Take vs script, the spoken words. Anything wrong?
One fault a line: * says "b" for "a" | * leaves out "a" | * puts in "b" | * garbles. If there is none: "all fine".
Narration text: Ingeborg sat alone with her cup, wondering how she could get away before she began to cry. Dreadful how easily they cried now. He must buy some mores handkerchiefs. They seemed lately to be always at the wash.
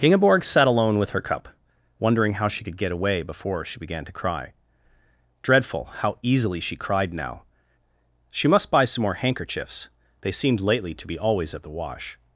* says "she" for "they"
* says "She" for "He"
* says "more" for "mores"